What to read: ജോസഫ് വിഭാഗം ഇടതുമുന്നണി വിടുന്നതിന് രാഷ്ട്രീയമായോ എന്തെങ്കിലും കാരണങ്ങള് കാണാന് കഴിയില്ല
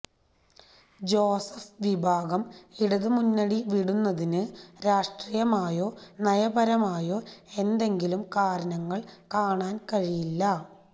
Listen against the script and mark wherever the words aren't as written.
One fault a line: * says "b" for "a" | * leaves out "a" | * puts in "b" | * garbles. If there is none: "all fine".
* puts in "നയപരമായോ"